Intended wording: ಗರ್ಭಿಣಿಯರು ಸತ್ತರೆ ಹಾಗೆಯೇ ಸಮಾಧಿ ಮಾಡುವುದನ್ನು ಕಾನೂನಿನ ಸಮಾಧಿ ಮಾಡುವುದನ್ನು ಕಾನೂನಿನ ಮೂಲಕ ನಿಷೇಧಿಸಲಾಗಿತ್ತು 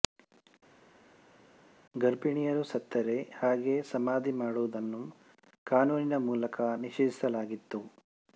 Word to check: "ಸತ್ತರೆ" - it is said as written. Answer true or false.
true